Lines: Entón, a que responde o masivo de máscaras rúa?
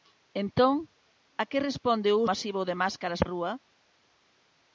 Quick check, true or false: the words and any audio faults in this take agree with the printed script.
true